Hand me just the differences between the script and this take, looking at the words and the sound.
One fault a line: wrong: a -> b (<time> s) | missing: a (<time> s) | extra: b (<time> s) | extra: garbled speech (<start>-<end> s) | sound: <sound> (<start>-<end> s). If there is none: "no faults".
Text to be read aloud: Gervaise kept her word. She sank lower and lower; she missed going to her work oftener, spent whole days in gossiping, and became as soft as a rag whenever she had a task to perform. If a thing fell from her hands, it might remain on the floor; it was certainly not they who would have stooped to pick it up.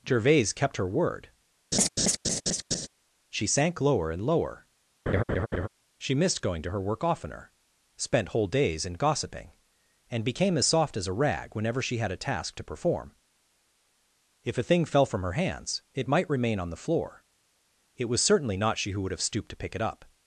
sound: laugh (1.7-2.9 s)
sound: laugh (5.1-5.7 s)
wrong: they -> she (18.8 s)